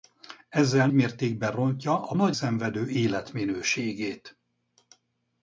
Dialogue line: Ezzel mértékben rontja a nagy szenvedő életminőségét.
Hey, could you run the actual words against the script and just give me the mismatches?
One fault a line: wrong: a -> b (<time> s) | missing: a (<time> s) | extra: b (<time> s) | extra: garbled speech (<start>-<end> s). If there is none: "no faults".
no faults